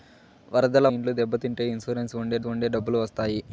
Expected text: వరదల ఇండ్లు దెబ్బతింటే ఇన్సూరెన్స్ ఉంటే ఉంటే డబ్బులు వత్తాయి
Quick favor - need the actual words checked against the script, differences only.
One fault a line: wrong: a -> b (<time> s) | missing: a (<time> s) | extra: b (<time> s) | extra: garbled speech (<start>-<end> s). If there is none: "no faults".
no faults